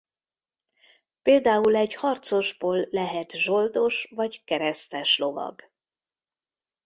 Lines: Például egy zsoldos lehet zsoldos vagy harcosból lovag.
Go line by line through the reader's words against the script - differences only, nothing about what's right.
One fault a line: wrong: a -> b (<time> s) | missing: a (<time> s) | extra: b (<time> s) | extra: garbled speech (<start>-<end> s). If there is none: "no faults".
wrong: zsoldos -> harcosból (1.9 s)
wrong: harcosból -> keresztes (4.4 s)